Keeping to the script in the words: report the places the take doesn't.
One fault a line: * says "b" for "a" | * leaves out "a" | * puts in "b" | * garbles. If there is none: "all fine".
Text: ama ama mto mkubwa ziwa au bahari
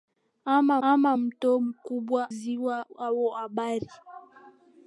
all fine